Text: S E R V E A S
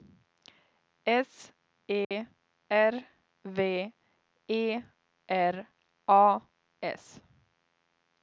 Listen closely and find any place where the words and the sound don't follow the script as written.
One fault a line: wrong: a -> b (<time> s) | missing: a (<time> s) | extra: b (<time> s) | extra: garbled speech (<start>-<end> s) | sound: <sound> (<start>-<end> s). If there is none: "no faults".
sound: dropout (2.0-2.1 s)
extra: R (5.3 s)